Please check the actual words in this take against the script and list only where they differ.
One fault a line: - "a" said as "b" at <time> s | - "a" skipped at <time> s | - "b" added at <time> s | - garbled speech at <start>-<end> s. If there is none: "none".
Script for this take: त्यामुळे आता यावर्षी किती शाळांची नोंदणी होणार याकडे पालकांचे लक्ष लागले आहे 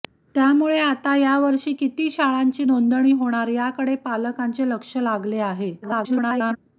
- garbled speech at 5.8-6.6 s